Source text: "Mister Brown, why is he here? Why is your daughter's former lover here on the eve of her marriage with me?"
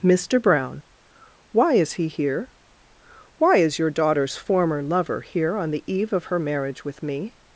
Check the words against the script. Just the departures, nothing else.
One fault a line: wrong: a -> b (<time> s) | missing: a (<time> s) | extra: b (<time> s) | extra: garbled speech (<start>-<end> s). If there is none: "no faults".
no faults